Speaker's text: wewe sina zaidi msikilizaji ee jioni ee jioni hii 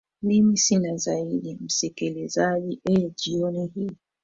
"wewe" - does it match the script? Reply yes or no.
no